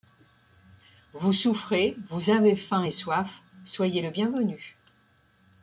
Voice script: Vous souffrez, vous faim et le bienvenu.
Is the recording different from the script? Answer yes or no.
yes